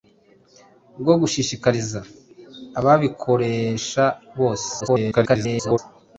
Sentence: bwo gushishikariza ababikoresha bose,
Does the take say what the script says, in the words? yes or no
no